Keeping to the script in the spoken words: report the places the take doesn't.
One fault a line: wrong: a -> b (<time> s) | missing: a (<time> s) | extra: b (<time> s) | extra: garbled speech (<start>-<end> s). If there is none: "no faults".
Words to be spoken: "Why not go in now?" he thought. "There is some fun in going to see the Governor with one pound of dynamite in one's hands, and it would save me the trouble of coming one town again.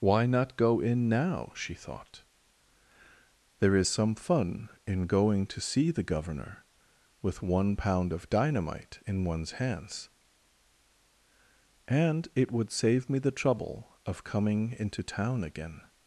wrong: he -> she (1.6 s)
wrong: one -> into (14.8 s)